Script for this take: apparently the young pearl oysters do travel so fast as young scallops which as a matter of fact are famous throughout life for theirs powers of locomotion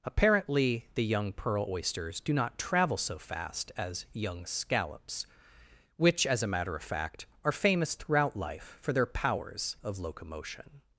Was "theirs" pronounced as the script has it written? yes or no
no